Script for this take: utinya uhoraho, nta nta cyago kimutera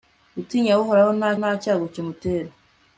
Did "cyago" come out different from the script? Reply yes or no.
no